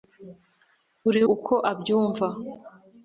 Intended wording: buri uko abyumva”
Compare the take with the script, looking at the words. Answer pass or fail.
pass